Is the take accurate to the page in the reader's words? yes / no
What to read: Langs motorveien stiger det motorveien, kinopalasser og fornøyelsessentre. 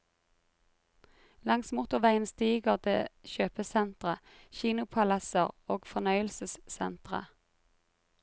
no